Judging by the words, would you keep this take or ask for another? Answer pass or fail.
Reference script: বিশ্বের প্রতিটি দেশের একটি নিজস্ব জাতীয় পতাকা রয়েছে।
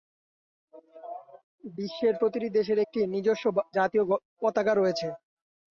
pass